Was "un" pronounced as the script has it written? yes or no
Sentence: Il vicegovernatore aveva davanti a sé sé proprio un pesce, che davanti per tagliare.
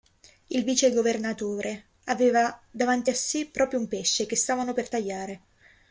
yes